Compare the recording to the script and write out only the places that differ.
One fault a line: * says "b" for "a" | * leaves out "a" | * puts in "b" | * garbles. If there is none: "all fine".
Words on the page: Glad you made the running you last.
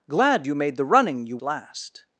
all fine